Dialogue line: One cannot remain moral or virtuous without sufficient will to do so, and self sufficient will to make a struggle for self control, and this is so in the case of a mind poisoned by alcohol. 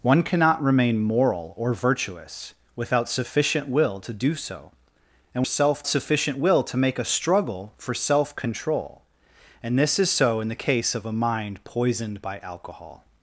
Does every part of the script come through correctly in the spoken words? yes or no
yes